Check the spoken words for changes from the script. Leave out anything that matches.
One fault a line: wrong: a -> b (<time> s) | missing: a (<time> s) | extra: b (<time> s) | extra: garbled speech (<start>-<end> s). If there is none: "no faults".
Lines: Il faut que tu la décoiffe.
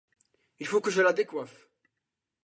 wrong: tu -> je (0.9 s)